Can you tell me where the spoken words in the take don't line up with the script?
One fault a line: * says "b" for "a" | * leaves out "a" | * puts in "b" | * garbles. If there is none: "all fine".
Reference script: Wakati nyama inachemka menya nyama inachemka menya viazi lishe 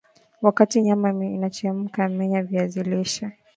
* leaves out "nyama inachemka menya"